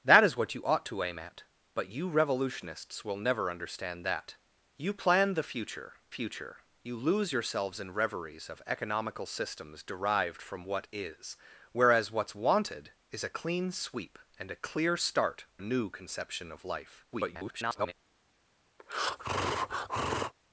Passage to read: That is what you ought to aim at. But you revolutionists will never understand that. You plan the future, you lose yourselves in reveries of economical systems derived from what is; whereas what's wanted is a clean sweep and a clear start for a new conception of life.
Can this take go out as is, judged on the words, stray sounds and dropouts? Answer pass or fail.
fail